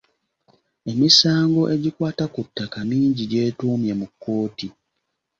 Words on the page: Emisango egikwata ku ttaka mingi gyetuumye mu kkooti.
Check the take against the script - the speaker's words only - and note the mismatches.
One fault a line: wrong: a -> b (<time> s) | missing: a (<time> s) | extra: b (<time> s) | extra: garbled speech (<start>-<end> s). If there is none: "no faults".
no faults